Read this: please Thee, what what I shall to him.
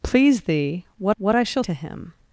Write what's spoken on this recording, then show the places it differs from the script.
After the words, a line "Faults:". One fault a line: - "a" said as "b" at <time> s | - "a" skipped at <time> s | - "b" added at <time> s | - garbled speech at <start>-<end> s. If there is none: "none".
please Thee, what what I shall to him.
Faults:
none